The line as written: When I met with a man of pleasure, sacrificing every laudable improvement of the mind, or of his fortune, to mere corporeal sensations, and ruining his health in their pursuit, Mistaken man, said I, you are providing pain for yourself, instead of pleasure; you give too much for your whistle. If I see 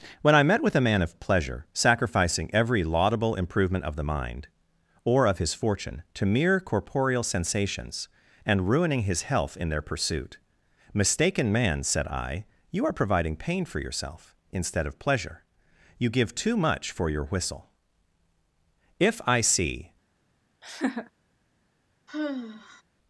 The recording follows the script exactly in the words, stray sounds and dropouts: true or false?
false